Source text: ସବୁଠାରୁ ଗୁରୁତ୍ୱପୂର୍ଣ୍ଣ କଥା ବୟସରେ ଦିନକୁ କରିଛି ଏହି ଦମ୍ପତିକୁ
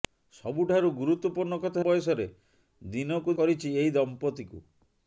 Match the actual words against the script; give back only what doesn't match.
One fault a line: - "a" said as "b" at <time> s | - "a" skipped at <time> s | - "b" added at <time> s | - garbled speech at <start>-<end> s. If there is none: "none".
none